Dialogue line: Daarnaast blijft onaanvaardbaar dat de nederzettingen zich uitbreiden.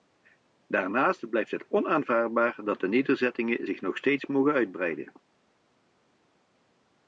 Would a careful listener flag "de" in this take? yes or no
no